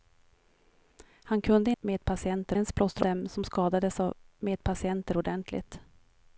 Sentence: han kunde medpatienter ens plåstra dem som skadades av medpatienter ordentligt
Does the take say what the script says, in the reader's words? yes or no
yes